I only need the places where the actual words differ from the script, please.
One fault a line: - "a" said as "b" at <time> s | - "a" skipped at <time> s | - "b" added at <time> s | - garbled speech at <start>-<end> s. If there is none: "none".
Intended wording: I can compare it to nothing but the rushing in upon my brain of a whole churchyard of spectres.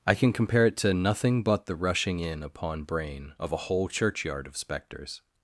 - "my" skipped at 2.8 s